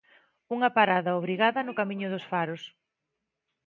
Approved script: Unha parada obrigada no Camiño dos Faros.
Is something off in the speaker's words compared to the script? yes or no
no